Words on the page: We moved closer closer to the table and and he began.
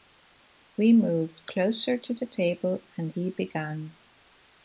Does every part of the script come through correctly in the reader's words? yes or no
no